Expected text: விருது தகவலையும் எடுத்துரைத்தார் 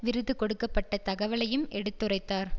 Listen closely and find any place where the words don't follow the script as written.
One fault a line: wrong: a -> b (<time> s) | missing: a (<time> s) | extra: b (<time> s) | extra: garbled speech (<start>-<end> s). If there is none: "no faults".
extra: கொடுக்க பட்ட (0.3 s)